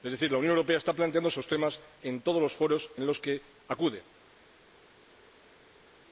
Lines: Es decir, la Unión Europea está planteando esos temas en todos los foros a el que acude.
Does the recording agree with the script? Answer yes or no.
no